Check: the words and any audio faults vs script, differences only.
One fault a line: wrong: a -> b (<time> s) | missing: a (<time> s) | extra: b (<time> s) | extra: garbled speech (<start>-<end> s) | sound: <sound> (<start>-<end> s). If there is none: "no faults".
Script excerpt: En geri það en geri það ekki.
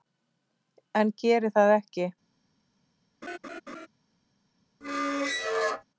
missing: en geri það (1.8 s)
sound: laugh (3.2-3.9 s)
sound: squeak (4.8-5.8 s)